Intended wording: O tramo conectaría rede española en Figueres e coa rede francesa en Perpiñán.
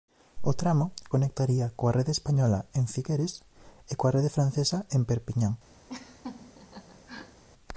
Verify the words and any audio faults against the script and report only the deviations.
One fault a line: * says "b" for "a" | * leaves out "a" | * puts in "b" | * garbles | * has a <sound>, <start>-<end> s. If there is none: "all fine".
* puts in "coa"
* has a laugh, 5.9-7.4 s